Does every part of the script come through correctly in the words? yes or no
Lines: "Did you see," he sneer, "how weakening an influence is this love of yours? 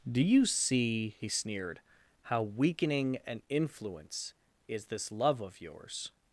no